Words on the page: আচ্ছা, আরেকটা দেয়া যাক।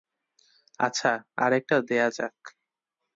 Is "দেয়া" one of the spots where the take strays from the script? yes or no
no